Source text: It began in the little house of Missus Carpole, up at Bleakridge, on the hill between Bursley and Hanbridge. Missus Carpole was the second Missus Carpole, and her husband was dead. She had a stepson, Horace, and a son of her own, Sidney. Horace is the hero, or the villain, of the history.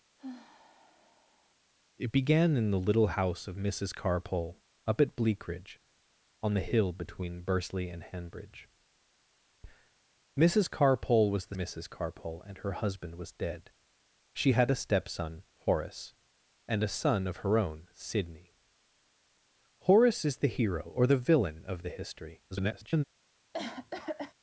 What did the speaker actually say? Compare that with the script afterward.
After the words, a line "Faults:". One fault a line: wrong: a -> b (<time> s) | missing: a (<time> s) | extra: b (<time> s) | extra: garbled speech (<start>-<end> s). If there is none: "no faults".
It began in the little house of Missus Carpole, up at Bleakridge, on the hill between Bursley and Hanbridge. Missus Carpole was the Missus Carpole, and her husband was dead. She had a stepson, Horace, and a son of her own, Sidney. Horace is the hero, or the villain, of the history. [garbled]
Faults:
missing: second (11.6 s)
extra: garbled speech (22.5-23.0 s)